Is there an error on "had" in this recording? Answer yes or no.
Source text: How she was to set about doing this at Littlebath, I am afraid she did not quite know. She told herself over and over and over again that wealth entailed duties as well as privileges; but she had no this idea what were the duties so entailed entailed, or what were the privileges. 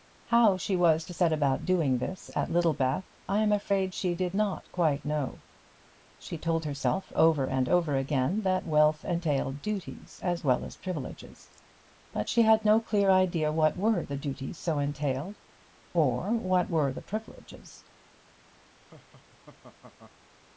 no